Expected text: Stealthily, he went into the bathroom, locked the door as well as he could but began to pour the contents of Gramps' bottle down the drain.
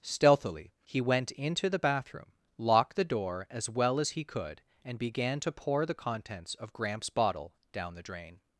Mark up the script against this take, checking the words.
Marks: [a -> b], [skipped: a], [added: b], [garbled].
Stealthily, he went into the bathroom, locked the door as well as he could [but -> and] began to pour the contents of Gramps' bottle down the drain.